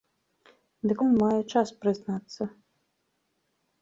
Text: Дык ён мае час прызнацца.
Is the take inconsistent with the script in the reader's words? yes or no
no